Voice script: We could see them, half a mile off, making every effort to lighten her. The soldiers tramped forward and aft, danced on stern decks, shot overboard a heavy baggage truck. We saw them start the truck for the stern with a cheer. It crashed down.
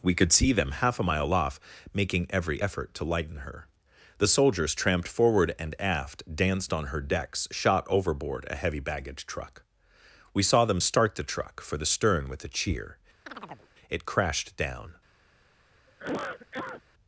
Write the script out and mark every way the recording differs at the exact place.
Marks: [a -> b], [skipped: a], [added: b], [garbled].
We could see them, half a mile off, making every effort to lighten her. The soldiers tramped forward and aft, danced on [stern -> her] decks, shot overboard a heavy baggage truck. We saw them start the truck for the stern with a cheer. It crashed down.